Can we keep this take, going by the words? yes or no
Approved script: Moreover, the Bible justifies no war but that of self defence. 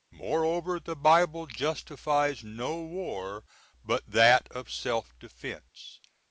yes